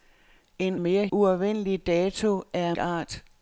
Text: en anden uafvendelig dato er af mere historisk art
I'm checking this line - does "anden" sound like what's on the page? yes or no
no